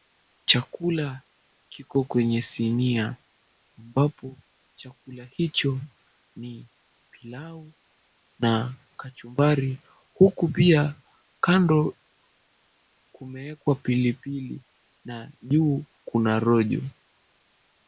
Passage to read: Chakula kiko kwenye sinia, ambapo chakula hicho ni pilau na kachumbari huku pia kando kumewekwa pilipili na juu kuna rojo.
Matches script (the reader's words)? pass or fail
pass